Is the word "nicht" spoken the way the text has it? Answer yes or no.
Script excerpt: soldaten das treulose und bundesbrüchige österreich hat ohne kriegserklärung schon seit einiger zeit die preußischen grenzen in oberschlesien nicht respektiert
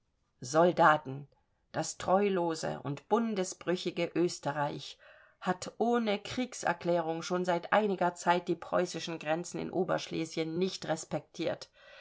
yes